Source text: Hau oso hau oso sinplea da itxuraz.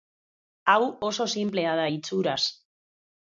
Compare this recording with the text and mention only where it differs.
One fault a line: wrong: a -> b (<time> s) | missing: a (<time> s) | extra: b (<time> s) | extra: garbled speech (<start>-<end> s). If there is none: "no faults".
missing: hau oso (1.3 s)